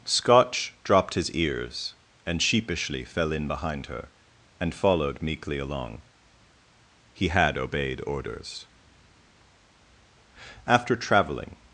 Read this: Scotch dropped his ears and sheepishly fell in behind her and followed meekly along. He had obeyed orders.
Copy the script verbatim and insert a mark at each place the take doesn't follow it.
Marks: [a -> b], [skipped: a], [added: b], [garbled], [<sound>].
Scotch dropped his ears and sheepishly fell in behind her and followed meekly along. He had obeyed orders. [added: After traveling]